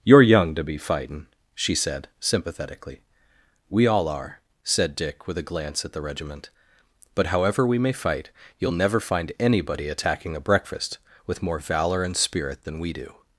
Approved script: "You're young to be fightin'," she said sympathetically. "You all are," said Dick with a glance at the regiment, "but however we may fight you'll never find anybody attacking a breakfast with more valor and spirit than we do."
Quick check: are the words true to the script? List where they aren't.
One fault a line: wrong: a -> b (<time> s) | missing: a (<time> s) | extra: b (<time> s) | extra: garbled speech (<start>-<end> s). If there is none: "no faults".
wrong: You -> We (3.7 s)